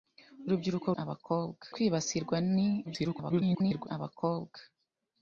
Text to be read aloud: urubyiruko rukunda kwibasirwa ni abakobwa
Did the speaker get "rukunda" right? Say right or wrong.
wrong